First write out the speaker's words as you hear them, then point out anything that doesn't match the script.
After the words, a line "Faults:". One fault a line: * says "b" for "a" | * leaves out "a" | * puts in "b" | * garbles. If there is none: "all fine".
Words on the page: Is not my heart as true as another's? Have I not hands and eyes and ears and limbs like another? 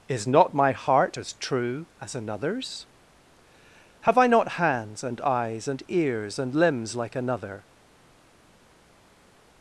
Is not my heart as true as another's? Have I not hands and eyes and ears and limbs like another?
Faults:
all fine